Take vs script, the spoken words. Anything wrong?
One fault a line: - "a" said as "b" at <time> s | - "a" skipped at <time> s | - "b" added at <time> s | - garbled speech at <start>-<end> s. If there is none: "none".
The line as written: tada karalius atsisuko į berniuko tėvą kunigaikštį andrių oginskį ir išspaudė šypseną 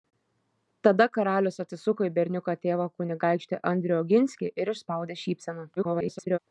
- garbled speech at 5.8-6.4 s